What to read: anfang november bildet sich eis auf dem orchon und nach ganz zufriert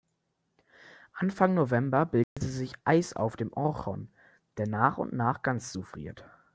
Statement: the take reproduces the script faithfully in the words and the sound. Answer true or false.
false